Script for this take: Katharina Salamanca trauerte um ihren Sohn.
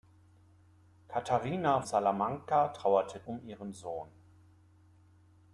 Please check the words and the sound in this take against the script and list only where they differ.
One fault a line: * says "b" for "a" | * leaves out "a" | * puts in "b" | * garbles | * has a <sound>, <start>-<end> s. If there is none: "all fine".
all fine